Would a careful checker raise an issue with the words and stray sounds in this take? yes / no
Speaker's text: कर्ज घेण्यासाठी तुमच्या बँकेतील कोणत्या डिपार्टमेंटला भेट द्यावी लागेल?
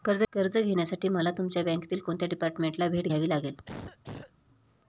yes